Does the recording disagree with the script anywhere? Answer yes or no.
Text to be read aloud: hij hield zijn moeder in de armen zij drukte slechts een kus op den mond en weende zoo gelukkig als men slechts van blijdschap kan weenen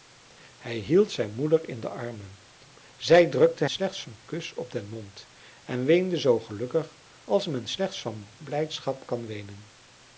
no